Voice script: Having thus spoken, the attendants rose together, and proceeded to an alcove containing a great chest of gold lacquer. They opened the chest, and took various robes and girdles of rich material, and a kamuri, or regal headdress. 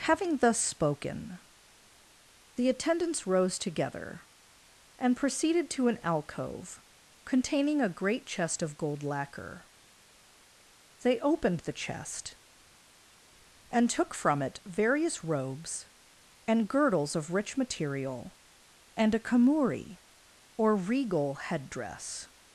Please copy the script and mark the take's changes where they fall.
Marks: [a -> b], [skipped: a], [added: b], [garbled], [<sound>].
Having thus spoken, the attendants rose together, and proceeded to an alcove containing a great chest of gold lacquer. They opened the chest, and took [added: from it] various robes and girdles of rich material, and a kamuri, or regal headdress.